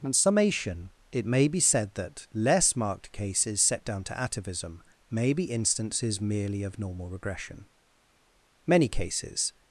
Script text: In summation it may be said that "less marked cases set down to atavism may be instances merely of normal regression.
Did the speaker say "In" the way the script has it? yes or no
yes